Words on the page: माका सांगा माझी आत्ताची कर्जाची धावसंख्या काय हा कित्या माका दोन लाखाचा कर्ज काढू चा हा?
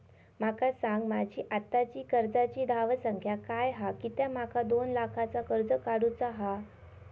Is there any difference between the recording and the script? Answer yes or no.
no